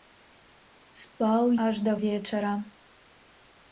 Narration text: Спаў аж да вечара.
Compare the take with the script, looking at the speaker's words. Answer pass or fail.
pass